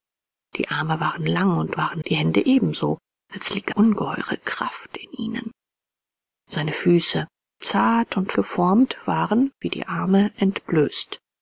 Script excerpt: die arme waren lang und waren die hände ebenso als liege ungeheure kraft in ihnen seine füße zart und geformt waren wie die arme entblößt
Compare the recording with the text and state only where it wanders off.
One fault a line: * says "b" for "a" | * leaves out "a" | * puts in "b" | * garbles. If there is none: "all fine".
all fine